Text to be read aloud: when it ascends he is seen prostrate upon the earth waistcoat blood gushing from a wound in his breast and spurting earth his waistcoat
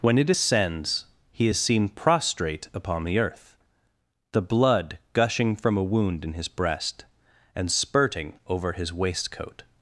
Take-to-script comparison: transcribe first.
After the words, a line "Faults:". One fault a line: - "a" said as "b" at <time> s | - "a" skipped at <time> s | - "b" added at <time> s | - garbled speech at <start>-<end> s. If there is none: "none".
when it ascends he is seen prostrate upon the earth the blood gushing from a wound in his breast and spurting over his waistcoat
Faults:
- "waistcoat" said as "the" at 4.3 s
- "earth" said as "over" at 8.5 s